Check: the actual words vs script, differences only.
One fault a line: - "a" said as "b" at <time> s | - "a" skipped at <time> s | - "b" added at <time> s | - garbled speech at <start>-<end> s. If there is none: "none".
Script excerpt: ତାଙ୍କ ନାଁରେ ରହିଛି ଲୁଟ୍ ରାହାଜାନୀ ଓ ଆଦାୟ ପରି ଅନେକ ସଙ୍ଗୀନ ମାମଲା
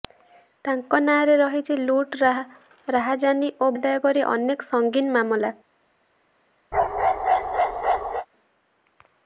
none